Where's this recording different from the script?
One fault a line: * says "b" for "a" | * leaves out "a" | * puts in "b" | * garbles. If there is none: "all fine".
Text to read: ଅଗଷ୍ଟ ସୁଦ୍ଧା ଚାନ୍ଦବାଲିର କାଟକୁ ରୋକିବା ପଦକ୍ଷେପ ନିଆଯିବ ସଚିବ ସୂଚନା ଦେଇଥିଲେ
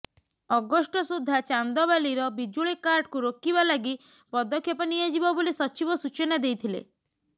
* puts in "ବିଜୁଳି"
* puts in "ଲାଗି"
* puts in "ବୋଲି"